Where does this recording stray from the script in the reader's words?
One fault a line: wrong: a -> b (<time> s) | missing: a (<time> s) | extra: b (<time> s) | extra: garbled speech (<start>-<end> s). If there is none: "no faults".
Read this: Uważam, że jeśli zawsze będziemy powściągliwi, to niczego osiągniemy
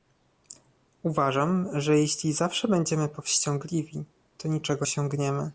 no faults